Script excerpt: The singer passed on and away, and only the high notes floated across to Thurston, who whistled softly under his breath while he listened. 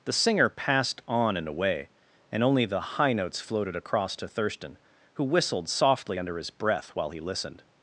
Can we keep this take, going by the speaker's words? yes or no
yes